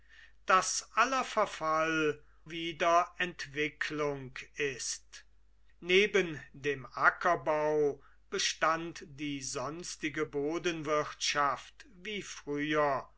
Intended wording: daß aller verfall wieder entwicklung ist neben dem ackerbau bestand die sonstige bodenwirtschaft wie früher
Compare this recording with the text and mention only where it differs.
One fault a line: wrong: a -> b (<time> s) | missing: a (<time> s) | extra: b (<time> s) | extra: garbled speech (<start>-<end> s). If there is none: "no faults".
no faults